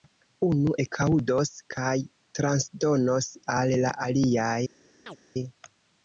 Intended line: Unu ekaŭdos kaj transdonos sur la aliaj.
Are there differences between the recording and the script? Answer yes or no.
yes